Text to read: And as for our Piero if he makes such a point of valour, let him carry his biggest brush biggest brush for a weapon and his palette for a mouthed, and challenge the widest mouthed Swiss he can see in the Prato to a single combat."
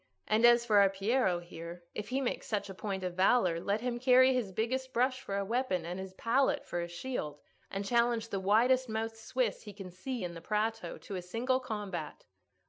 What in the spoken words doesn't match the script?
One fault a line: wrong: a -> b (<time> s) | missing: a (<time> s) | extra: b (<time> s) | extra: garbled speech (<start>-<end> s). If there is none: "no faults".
extra: here (1.4 s)
missing: biggest brush (5.2 s)
wrong: mouthed -> shield (6.9 s)